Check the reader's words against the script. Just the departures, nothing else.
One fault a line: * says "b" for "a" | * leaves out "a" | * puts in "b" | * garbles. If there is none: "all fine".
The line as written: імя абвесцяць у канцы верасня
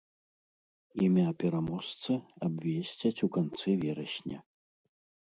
* puts in "пераможцы"